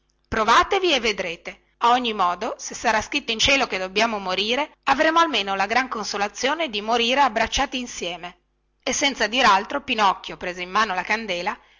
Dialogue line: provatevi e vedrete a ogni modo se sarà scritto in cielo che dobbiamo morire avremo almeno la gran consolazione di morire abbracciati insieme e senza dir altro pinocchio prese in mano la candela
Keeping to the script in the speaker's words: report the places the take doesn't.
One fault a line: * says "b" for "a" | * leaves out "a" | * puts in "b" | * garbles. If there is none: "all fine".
all fine